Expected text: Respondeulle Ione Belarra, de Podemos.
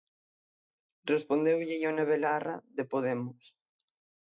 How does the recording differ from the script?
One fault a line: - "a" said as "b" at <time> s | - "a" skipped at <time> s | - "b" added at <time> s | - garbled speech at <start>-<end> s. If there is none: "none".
none